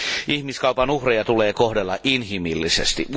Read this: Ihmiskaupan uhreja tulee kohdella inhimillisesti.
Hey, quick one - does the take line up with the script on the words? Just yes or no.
yes